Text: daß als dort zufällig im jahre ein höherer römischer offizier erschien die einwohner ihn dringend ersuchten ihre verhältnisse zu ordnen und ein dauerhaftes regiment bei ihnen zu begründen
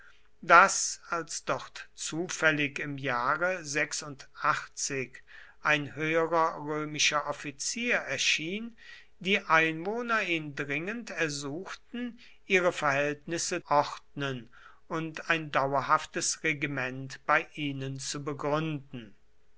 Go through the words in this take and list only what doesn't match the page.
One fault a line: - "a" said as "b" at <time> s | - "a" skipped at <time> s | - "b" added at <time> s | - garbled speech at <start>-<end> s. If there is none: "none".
- "zu" skipped at 13.6 s